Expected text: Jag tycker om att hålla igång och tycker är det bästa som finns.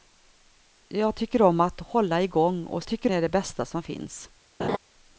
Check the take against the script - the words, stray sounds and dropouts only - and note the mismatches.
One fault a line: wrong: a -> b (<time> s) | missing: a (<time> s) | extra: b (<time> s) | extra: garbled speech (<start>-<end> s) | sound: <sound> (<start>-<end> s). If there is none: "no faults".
sound: laugh (4.6-4.8 s)